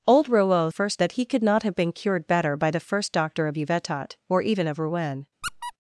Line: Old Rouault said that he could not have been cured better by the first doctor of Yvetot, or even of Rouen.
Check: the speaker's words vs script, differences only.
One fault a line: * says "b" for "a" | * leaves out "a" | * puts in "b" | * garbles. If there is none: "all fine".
* says "first" for "said"